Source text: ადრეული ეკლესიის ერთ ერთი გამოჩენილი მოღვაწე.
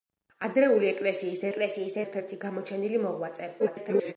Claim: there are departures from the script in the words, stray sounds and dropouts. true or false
true